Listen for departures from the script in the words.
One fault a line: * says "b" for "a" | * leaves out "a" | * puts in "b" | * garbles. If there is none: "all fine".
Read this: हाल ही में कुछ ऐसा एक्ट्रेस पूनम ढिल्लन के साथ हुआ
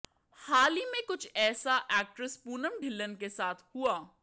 all fine